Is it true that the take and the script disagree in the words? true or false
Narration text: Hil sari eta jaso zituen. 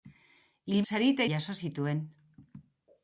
false